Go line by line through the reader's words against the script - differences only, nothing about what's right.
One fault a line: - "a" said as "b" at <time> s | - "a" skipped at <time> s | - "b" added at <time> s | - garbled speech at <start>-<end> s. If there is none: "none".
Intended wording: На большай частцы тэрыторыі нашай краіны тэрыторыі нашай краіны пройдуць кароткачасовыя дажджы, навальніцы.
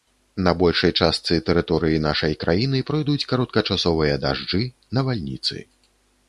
- "тэрыторыі нашай краіны" skipped at 2.8 s